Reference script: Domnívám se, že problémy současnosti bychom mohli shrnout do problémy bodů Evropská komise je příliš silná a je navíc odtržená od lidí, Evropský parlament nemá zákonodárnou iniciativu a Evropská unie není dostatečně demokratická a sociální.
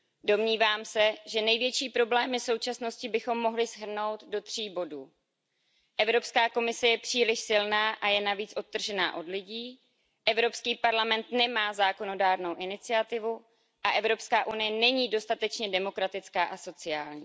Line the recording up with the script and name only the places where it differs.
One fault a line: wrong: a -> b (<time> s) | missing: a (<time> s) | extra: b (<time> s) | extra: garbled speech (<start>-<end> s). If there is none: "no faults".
extra: největší (1.4 s)
wrong: problémy -> tří (4.4 s)